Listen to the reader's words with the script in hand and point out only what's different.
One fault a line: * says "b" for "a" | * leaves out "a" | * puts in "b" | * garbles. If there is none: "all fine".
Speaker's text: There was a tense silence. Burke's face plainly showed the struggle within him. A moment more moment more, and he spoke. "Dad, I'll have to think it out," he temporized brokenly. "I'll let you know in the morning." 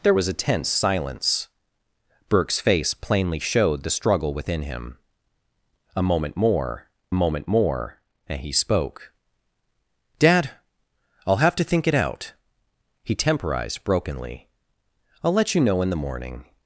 all fine